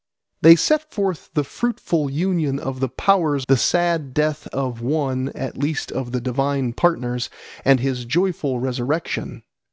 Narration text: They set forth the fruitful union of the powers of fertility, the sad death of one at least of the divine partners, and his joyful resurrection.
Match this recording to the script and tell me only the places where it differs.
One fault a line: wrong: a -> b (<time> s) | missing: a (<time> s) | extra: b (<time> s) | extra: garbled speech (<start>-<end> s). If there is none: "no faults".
missing: of fertility (3.5 s)